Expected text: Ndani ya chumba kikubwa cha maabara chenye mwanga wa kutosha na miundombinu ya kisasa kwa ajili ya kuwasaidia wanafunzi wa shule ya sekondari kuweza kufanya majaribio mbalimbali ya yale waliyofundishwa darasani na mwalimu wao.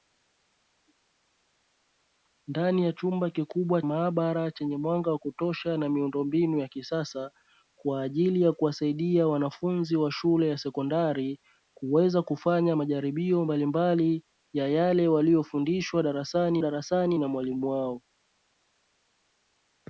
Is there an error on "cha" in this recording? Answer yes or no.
yes